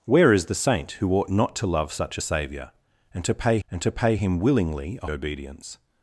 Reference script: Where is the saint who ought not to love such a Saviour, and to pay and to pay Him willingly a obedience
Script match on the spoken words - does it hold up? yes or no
yes